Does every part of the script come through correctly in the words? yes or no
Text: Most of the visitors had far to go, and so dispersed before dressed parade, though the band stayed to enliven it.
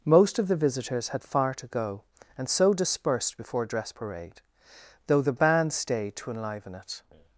no